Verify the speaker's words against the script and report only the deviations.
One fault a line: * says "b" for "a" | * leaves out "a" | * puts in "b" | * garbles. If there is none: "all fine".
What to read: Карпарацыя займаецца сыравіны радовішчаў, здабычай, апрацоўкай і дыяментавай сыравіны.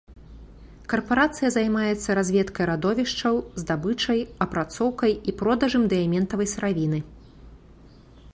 * says "разведкай" for "сыравіны"
* puts in "продажам"